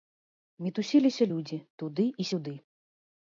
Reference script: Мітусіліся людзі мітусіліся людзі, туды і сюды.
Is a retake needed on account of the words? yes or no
yes